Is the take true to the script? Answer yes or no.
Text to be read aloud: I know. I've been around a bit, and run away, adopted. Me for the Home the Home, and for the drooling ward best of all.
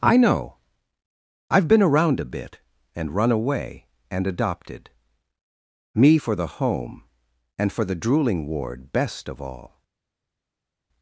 no